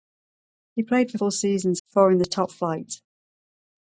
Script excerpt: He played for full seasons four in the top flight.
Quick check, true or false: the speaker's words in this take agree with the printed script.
true